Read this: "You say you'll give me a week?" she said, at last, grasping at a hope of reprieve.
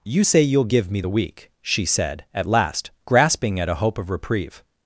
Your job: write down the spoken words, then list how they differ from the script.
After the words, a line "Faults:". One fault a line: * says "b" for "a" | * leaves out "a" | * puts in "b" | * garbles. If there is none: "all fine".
"You say you'll give me the week?" she said, at last, grasping at a hope of reprieve.
Faults:
* says "the" for "a"